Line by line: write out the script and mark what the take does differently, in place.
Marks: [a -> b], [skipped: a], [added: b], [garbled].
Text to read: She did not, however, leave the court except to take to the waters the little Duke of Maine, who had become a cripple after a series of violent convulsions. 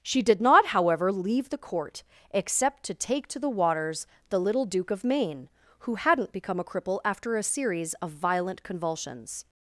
She did not, however, leave the court except to take to the waters the little Duke of Maine, who [had -> hadn't] become a cripple after a series of violent convulsions.